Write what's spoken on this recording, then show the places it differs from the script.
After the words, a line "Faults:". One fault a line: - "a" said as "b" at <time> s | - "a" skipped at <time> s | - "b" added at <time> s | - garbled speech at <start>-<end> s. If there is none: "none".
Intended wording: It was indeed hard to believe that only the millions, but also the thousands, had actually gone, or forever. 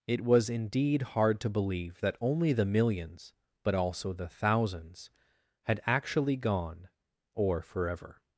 It was indeed hard to believe that only the millions, but also the thousands, had actually gone, or forever.
Faults:
none